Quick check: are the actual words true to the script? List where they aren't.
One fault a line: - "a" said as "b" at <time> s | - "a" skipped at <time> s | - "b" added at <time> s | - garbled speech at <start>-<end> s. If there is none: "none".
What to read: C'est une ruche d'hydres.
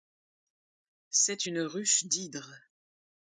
none